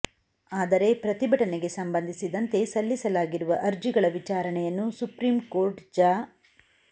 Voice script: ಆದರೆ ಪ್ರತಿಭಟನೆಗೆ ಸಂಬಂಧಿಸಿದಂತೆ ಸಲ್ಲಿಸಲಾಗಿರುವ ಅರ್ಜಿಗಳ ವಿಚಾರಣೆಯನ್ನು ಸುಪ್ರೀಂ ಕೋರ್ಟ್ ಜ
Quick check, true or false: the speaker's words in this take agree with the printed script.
true